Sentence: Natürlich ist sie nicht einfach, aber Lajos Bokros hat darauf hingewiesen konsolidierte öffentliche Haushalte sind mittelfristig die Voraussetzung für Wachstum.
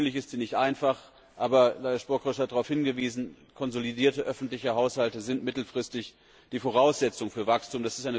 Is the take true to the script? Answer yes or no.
yes